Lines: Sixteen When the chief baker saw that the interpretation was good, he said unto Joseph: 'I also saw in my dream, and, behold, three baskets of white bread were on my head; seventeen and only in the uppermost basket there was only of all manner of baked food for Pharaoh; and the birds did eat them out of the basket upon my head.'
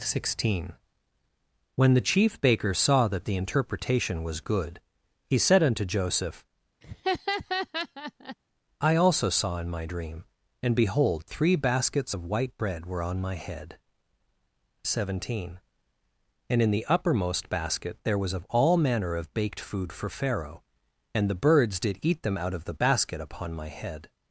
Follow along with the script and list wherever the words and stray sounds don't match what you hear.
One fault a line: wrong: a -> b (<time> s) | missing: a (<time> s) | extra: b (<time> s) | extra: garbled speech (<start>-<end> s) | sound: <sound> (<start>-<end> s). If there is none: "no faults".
sound: laugh (6.8-8.4 s)
missing: only (16.6 s)
missing: only (18.3 s)